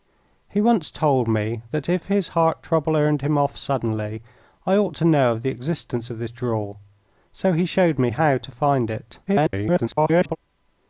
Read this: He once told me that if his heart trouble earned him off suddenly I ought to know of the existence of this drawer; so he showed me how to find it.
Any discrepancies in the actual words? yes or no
yes